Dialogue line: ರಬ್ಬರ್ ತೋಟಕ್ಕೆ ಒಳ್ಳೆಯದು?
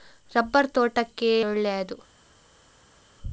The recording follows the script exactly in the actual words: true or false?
true